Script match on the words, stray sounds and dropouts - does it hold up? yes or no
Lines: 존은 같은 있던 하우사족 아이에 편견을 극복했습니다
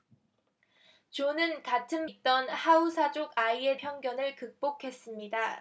yes